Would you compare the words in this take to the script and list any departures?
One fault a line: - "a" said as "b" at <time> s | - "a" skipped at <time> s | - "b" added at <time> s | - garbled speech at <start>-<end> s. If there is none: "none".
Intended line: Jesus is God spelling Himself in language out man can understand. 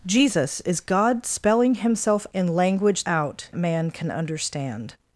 none